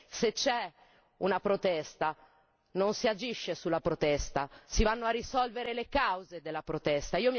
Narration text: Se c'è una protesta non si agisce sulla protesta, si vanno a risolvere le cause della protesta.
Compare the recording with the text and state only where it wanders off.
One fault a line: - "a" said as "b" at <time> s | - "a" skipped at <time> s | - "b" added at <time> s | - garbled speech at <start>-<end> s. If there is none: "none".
none